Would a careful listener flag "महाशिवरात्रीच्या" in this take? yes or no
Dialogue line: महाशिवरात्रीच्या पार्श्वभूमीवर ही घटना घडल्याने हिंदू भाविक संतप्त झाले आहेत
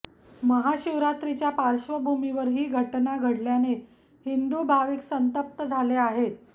no